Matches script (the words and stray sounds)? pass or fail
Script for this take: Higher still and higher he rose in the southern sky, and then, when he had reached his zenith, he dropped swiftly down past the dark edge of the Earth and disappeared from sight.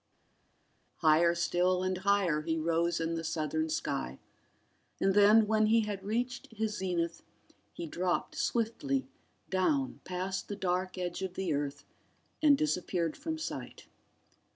pass